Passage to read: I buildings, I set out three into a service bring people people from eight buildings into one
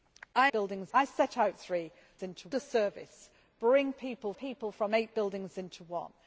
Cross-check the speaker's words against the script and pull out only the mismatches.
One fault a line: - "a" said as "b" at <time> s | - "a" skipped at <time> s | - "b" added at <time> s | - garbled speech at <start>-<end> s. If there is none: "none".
none